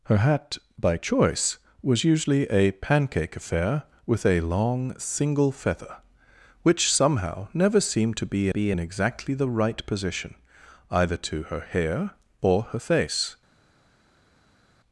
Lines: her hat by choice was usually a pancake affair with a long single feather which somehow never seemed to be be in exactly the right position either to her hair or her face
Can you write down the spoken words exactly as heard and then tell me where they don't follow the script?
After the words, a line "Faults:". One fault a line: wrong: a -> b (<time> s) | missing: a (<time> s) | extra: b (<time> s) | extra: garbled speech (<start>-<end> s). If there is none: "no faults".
her hat by choice was usually a pancake affair with a long single feather which somehow never seemed to be be in exactly the right position either to her hair or her face
Faults:
no faults